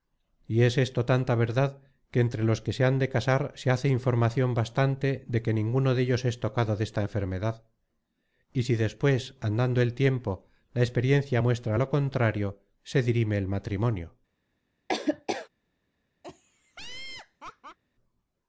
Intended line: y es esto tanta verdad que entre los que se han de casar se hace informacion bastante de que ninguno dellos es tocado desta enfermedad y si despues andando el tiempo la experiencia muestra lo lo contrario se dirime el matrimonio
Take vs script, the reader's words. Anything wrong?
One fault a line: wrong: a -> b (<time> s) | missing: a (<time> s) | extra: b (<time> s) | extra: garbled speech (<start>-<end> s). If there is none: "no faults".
missing: lo (11.9 s)